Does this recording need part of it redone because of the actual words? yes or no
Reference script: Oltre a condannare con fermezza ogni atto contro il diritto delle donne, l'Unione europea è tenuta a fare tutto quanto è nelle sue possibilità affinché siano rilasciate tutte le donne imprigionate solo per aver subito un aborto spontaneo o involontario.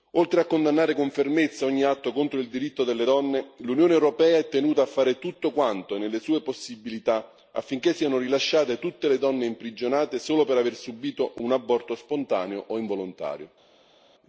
no